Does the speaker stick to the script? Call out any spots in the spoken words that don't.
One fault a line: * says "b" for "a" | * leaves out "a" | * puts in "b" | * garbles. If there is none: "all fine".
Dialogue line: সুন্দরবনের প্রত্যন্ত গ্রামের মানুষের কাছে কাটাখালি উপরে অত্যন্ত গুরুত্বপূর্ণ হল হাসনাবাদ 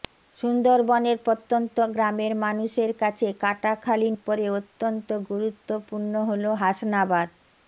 all fine